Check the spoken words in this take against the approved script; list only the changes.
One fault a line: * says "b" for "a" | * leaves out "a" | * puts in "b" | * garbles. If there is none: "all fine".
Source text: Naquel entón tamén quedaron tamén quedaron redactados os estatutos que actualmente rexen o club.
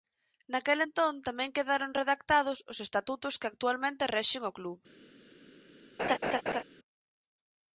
* leaves out "tamén quedaron"